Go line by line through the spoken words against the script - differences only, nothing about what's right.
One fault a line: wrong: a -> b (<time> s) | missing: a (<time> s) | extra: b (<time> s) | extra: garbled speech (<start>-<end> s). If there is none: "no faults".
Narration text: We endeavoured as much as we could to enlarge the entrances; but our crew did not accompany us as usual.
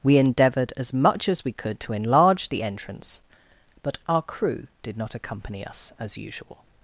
wrong: entrances -> entrance (2.6 s)